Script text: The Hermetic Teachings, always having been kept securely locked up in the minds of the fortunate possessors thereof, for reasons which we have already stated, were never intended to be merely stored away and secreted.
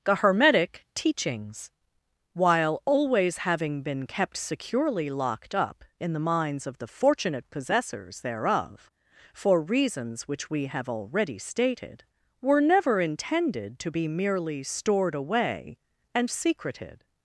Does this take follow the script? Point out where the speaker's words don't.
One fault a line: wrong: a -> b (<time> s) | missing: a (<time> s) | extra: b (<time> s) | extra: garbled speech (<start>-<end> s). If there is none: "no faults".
extra: while (2.3 s)